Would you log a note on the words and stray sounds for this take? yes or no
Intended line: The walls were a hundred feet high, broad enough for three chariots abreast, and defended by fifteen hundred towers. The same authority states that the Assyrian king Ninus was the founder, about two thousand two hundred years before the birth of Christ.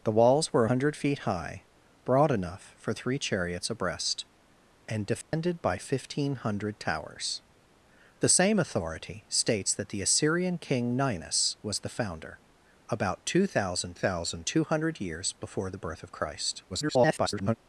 yes